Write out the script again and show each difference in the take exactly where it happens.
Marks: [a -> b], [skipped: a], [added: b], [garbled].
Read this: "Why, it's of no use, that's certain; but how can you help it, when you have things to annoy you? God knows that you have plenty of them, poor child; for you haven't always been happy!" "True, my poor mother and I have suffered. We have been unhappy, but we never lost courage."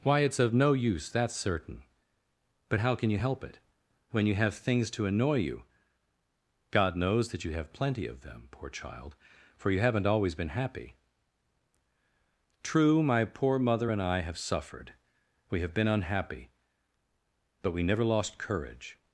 "Why, it's of no use, that's certain; but how can you help it, when you have things to annoy you? God knows that you have plenty of them, poor child; for you haven't always been happy!" "True, my poor mother and I have suffered. We have been unhappy, but we never lost courage."